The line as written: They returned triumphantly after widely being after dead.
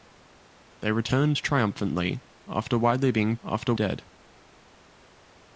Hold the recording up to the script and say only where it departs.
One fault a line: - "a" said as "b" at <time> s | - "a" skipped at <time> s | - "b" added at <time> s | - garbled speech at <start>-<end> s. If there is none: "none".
none